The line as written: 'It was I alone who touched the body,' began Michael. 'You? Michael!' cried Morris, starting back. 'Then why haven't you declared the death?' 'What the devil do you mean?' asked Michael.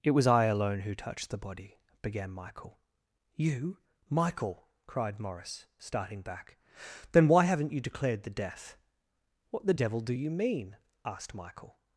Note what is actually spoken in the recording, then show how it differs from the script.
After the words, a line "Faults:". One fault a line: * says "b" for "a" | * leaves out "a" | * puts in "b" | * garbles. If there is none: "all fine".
'It was I alone who touched the body,' began Michael. 'You? Michael!' cried Morris, starting back. 'Then why haven't you declared the death?' 'What the devil do you mean?' asked Michael.
Faults:
all fine